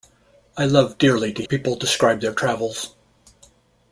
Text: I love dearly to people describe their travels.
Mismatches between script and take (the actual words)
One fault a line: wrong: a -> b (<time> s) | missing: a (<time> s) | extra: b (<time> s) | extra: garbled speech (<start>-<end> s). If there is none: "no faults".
no faults